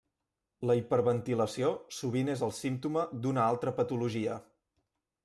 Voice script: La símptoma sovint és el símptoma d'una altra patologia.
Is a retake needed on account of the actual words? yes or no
yes